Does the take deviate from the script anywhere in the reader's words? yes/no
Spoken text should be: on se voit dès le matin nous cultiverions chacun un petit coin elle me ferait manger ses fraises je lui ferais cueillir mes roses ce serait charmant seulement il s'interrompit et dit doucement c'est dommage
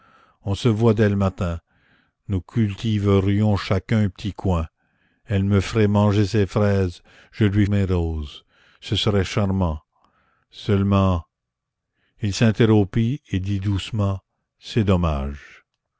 yes